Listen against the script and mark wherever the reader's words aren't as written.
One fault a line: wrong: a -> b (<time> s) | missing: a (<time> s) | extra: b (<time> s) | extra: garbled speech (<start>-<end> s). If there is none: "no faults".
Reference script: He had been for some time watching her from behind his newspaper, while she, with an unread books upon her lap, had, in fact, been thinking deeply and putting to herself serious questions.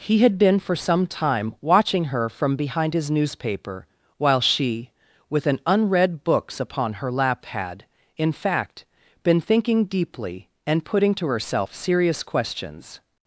no faults